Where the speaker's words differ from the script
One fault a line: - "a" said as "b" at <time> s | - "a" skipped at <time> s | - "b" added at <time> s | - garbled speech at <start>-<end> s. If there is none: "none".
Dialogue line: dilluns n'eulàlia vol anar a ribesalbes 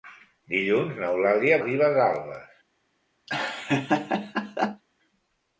- "vol anar a" skipped at 1.6 s